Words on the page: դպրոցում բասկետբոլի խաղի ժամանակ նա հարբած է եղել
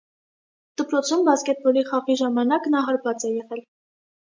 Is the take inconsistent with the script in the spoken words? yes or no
no